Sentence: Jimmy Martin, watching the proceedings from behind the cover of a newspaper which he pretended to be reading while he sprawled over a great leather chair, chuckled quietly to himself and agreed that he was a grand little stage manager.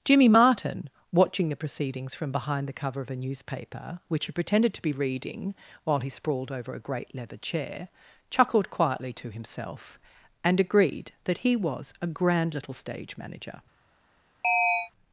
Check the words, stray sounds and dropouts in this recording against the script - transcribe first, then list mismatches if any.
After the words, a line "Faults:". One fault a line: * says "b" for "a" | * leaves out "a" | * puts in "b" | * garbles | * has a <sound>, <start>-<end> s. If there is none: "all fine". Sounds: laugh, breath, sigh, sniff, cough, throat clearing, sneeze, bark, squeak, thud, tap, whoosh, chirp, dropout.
Jimmy Martin, watching the proceedings from behind the cover of a newspaper which he pretended to be reading while he sprawled over a great leather chair, chuckled quietly to himself and agreed that he was a grand little stage manager.
Faults:
* has a chirp, 14.4-14.9 s